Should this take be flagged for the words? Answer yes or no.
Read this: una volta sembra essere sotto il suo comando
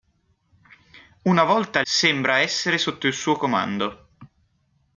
no